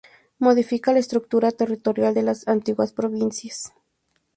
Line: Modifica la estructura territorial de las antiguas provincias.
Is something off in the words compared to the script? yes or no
no